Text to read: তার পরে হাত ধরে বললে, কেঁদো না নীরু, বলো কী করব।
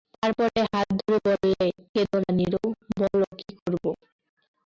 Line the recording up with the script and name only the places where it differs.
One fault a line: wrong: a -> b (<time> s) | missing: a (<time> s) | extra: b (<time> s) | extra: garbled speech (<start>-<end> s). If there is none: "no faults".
no faults